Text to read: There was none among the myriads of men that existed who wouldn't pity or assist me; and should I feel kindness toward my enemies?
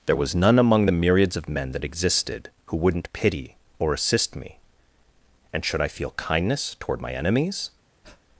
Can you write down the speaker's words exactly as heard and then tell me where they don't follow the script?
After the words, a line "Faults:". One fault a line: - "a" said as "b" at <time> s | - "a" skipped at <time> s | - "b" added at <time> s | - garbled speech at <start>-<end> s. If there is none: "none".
There was none among the myriads of men that existed who wouldn't pity or assist me; and should I feel kindness toward my enemies?
Faults:
none